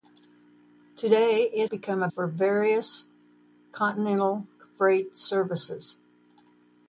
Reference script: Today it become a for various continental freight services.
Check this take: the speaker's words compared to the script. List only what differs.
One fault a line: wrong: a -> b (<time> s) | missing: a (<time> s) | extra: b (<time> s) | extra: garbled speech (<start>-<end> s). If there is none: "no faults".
no faults